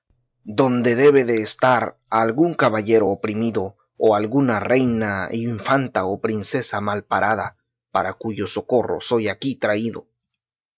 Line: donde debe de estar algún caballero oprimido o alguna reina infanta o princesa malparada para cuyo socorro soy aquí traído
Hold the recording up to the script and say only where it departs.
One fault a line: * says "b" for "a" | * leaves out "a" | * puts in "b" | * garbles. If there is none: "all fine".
all fine